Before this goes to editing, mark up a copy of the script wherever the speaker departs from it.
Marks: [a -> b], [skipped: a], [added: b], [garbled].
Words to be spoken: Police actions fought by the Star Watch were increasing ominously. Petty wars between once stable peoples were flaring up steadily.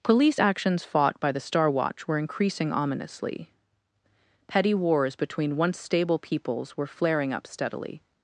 Police actions fought by the Star Watch were increasing ominously. Petty wars between once stable peoples were flaring up steadily.